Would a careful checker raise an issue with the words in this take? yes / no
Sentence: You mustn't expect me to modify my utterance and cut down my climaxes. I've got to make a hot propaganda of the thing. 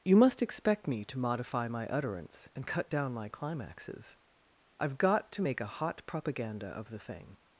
yes